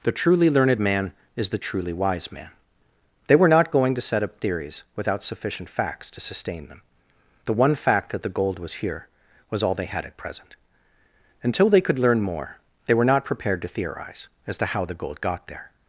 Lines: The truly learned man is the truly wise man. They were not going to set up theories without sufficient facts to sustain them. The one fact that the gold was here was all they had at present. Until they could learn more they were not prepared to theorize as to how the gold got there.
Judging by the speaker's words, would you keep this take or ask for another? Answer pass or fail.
pass